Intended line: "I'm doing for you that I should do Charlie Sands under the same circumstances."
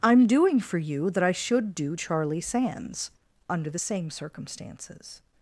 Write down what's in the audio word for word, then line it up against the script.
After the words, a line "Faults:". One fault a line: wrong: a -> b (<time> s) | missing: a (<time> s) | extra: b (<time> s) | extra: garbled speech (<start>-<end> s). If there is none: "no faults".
"I'm doing for you that I should do Charlie Sands under the same circumstances."
Faults:
no faults